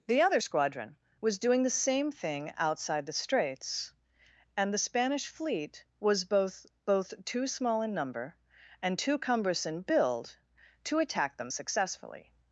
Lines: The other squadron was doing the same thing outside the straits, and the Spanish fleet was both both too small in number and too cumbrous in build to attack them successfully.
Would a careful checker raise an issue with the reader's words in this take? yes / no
no